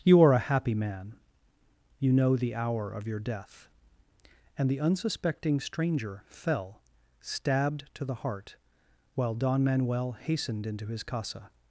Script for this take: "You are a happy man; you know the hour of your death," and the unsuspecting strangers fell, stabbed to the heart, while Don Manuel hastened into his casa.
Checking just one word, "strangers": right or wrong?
wrong